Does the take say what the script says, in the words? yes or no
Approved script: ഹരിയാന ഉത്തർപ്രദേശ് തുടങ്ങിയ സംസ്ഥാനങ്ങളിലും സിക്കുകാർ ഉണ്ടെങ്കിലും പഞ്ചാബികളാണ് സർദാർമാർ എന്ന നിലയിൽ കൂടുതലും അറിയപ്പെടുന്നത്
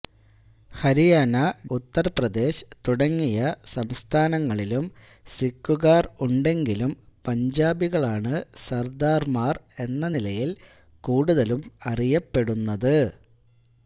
yes